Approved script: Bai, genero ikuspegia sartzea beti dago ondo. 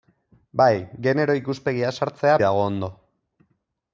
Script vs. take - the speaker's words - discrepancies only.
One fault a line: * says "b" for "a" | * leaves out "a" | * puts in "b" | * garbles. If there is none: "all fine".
* leaves out "beti"